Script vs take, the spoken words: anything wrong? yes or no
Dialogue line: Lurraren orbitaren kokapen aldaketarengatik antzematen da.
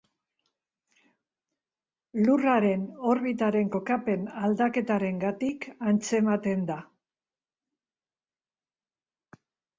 no